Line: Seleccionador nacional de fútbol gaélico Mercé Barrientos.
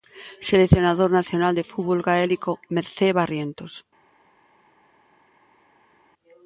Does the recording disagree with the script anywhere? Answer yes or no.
no